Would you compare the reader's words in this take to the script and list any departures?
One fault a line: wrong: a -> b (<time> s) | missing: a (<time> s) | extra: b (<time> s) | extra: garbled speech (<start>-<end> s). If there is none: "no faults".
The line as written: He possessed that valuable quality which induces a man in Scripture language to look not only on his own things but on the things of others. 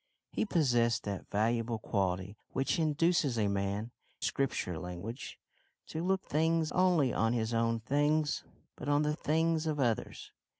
missing: in (3.9 s)
wrong: not -> things (6.2 s)